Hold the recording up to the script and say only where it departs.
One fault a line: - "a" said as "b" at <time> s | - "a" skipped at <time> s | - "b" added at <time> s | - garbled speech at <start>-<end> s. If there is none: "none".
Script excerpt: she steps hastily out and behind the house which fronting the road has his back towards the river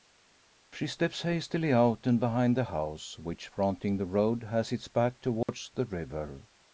- "his" said as "its" at 4.7 s